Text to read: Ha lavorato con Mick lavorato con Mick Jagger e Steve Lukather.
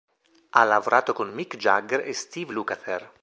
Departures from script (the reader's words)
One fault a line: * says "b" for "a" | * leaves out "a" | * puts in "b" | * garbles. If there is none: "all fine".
* leaves out "lavorato con Mick"